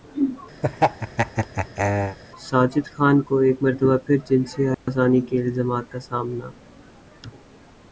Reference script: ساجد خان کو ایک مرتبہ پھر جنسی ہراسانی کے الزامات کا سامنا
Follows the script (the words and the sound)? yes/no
no